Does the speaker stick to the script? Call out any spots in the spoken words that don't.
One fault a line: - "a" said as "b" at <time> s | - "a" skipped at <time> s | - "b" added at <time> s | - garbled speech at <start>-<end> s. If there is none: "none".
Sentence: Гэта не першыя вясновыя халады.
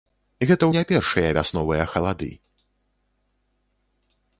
none